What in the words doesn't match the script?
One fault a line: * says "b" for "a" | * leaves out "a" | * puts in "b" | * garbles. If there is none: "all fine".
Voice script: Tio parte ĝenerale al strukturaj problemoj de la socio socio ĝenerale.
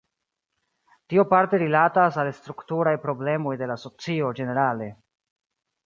* says "rilatas" for "ĝenerale"
* leaves out "socio"